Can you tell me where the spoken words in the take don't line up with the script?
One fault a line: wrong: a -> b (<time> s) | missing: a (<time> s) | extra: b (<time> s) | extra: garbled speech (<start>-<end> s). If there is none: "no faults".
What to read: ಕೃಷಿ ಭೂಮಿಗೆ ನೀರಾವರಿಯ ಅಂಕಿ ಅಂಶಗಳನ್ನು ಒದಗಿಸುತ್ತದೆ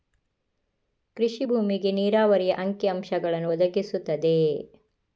no faults